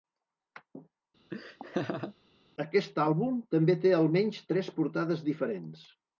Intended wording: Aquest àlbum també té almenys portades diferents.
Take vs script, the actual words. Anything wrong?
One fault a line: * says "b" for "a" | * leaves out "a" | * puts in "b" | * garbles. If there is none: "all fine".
* puts in "tres"